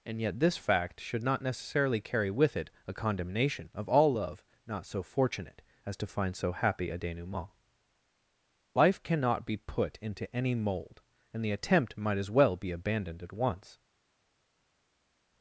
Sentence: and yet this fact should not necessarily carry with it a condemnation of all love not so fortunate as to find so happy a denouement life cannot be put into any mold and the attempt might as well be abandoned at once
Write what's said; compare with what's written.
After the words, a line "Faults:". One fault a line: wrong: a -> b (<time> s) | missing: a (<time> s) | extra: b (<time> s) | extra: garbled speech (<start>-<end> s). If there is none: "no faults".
and yet this fact should not necessarily carry with it a condemnation of all love not so fortunate as to find so happy a denouement life cannot be put into any mold and the attempt might as well be abandoned at once
Faults:
no faults